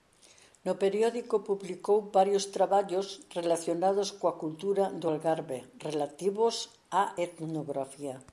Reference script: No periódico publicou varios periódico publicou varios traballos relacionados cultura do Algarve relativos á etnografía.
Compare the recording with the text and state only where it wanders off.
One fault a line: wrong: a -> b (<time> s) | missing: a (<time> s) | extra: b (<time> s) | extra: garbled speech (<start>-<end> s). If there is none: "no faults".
missing: periódico publicou varios (2.5 s)
extra: coa (4.2 s)